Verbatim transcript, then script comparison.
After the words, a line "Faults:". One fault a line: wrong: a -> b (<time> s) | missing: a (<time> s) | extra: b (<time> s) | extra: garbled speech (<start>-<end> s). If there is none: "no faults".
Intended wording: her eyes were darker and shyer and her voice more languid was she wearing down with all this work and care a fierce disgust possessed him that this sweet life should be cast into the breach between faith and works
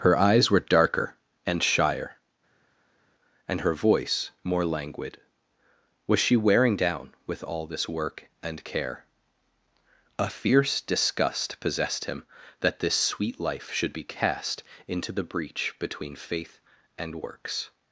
her eyes were darker and shyer and her voice more languid was she wearing down with all this work and care a fierce disgust possessed him that this sweet life should be cast into the breach between faith and works
Faults:
no faults